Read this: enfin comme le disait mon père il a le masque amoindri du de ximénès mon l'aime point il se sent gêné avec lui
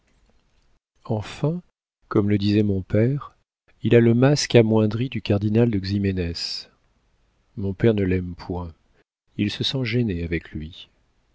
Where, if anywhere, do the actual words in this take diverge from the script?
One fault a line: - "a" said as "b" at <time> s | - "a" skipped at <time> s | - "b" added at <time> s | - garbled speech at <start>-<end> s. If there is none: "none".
- "cardinal" added at 5.2 s
- "père ne" added at 7.7 s